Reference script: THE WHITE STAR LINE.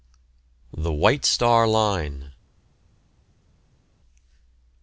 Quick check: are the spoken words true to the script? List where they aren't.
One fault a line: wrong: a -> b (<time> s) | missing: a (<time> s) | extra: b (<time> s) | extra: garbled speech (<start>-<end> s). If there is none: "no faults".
no faults